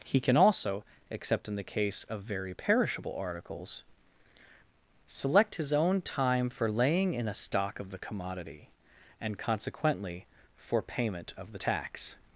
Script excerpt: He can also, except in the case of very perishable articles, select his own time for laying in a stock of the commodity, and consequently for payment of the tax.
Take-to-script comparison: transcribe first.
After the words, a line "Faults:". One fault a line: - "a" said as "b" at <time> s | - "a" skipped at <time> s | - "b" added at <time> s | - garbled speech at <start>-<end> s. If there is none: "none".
He can also, except in the case of very perishable articles, select his own time for laying in a stock of the commodity, and consequently for payment of the tax.
Faults:
none